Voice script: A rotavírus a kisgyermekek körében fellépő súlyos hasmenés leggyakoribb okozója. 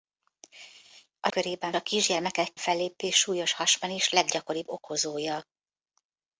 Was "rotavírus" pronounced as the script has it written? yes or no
no